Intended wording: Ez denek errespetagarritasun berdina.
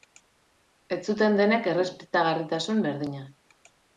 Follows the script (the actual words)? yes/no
no